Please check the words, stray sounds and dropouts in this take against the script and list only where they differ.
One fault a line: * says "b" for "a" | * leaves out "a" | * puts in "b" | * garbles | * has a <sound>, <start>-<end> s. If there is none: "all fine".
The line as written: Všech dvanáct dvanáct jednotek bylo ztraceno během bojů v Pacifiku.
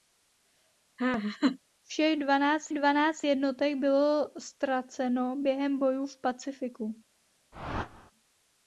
* has a laugh, 1.0-1.6 s
* has a whoosh, 7.5-8.1 s